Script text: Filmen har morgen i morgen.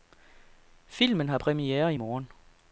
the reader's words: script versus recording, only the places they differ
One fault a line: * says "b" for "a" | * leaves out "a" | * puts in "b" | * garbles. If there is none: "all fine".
* says "premiere" for "morgen"